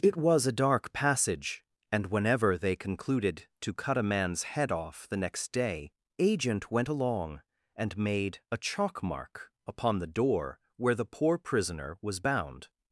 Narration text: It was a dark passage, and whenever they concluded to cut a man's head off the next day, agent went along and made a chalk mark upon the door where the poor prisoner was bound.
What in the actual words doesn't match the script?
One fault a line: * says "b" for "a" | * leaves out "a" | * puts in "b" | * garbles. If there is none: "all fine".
all fine